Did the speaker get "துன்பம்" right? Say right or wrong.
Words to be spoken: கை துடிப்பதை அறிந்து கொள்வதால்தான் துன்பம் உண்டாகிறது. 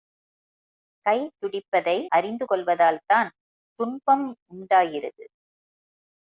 right